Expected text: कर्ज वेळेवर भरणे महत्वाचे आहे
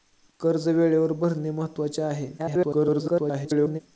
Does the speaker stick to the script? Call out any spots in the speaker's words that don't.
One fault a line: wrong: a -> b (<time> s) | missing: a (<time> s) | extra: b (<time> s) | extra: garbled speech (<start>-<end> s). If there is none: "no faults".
extra: garbled speech (2.4-3.8 s)